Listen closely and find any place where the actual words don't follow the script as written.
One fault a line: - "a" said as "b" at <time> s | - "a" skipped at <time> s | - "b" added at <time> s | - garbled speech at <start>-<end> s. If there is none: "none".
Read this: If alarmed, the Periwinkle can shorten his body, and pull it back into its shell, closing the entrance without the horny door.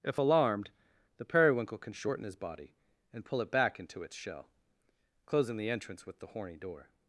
- "without" said as "with" at 6.1 s